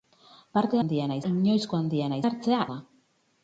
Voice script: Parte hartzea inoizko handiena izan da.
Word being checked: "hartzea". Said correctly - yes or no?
no